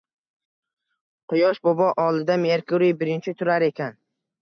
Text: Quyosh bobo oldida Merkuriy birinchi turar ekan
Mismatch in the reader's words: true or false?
false